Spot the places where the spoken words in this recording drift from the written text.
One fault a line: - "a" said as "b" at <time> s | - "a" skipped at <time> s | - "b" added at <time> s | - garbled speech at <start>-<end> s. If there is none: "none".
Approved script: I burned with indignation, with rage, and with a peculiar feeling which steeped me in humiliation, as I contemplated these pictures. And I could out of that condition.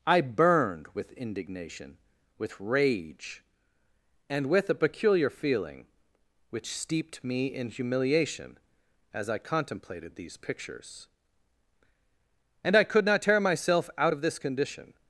- "not tear myself" added at 13.1 s
- "that" said as "this" at 14.2 s